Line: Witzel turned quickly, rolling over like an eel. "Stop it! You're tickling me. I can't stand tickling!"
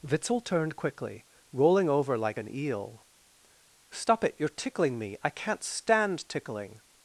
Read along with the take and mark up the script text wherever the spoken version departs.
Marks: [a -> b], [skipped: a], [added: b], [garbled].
Witzel turned quickly, rolling over like an eel. "Stop it! You're tickling me. I can't stand tickling!"